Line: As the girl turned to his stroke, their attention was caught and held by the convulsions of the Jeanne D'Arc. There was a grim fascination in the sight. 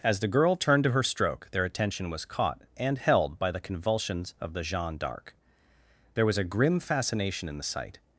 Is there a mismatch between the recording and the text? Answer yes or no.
yes